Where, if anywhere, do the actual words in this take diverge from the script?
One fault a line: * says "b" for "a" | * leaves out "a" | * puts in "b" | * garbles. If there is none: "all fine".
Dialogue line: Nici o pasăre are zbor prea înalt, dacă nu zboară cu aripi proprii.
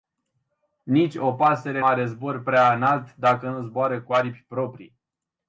all fine